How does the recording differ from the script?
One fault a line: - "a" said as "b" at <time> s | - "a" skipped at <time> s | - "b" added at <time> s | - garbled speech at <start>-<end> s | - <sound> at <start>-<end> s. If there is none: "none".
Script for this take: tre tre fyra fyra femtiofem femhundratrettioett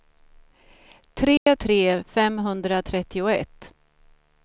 - dropout at 1.4-1.5 s
- "fyra fyra femtiofem" skipped at 2.0 s